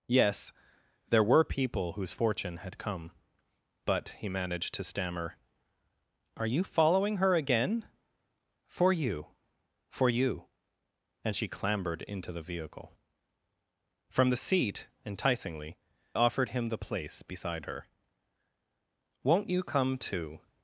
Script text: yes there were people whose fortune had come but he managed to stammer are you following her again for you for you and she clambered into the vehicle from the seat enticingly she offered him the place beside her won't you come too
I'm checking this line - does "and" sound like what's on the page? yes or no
yes